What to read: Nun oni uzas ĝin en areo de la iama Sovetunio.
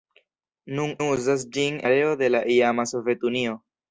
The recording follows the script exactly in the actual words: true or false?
false